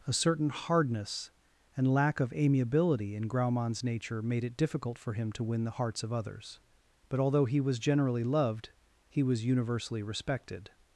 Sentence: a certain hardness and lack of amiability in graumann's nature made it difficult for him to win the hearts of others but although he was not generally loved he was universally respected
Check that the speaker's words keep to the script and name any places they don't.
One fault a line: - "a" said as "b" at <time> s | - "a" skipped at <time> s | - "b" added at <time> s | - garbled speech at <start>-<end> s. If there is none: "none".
- "not" skipped at 7.8 s